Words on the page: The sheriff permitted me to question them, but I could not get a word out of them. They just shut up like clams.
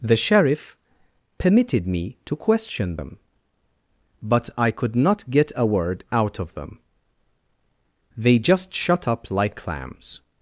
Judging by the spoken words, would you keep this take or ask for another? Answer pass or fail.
pass